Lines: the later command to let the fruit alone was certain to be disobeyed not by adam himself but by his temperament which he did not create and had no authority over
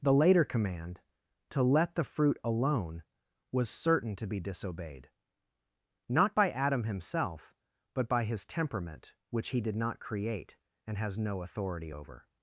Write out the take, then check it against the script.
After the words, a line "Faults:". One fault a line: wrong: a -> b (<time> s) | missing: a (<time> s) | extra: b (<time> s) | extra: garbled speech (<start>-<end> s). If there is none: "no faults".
the later command to let the fruit alone was certain to be disobeyed not by adam himself but by his temperament which he did not create and has no authority over
Faults:
wrong: had -> has (11.0 s)